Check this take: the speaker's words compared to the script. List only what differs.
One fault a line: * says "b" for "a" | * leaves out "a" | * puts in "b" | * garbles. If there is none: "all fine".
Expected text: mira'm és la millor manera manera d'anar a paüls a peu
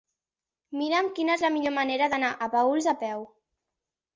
* puts in "quina"
* leaves out "manera"